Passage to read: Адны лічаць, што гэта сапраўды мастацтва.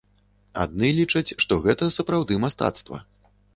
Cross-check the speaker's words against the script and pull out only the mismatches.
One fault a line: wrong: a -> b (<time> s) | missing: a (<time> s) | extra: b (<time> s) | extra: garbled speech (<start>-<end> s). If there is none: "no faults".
no faults